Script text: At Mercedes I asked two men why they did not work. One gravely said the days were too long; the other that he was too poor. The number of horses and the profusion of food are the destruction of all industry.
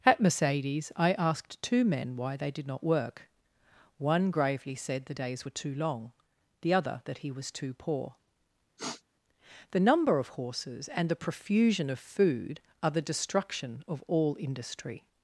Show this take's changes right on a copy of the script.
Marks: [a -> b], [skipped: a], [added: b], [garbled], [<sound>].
At Mercedes I asked two men why they did not work. One gravely said the days were too long; the other that he was too poor. [sniff] The number of horses and the profusion of food are the destruction of all industry.